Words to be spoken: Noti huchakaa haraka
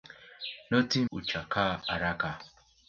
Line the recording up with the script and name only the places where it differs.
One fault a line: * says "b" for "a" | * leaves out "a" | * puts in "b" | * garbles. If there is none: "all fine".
all fine